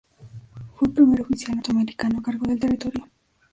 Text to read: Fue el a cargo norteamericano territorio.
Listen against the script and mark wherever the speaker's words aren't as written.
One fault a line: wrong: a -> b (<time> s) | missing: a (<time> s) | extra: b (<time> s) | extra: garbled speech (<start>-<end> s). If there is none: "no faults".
extra: primer oficial norteamericano (0.9 s)
wrong: norteamericano -> del (2.4 s)